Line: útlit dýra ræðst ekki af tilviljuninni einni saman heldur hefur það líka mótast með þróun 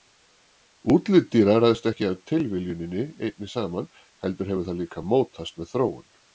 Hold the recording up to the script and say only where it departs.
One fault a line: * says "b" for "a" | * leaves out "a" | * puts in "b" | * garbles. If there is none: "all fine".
all fine